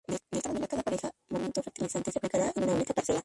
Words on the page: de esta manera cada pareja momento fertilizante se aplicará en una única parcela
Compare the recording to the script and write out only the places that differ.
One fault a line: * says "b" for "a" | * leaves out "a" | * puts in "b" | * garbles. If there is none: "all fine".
all fine